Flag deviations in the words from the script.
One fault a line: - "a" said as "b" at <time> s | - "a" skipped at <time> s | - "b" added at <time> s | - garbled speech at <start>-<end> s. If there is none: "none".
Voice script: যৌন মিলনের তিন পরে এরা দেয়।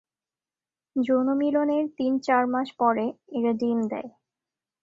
- "চার মাস" added at 2.2 s
- "ডিম" added at 3.5 s